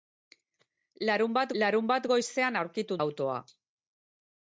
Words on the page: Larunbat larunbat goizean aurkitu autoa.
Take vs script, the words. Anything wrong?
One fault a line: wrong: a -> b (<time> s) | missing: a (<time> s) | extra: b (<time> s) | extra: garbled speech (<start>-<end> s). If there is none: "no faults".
no faults